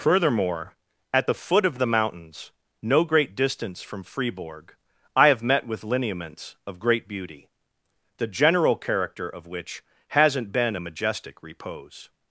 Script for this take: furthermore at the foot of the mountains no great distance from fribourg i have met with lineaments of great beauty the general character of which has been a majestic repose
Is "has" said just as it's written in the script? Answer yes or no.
no